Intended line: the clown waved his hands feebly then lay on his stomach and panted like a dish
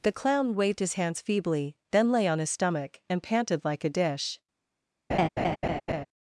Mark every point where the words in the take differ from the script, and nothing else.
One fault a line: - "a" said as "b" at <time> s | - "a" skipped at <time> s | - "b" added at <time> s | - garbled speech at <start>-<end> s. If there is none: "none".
none